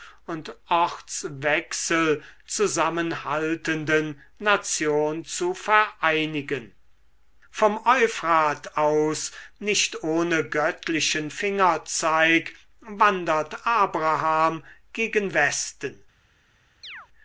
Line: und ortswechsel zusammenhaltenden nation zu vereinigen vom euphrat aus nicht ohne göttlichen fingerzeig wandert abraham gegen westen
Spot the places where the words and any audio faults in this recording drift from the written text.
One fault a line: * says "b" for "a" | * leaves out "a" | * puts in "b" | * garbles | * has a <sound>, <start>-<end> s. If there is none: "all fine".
* has a chirp, 16.8-17.1 s